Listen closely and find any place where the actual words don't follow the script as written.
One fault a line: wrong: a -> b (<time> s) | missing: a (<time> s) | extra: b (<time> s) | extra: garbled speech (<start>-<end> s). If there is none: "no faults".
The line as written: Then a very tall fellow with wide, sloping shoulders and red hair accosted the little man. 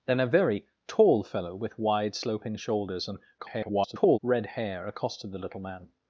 extra: garbled speech (3.4-4.2 s)